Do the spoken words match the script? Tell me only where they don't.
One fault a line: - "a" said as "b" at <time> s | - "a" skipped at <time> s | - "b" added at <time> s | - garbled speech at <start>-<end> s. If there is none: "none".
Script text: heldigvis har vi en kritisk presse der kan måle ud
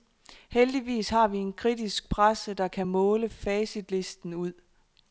- "facitlisten" added at 3.3 s